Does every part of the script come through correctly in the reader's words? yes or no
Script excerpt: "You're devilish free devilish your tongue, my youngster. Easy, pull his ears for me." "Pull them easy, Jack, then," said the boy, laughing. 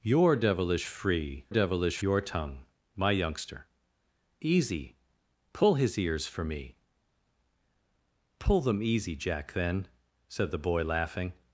yes